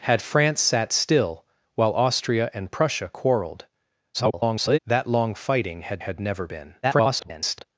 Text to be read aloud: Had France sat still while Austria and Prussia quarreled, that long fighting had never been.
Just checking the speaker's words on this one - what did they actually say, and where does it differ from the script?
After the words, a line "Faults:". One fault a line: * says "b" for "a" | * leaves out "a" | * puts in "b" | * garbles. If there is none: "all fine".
Had France sat still while Austria and Prussia quarreled, [garbled] that long fighting had had never been. [garbled]
Faults:
* garbles
* puts in "had"
* garbles